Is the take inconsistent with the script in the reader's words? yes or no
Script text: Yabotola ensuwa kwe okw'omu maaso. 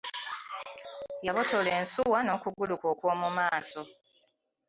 yes